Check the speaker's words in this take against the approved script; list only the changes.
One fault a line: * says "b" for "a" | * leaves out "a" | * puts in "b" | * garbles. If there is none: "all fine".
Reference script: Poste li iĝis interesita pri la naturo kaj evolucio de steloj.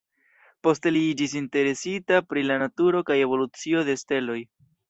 all fine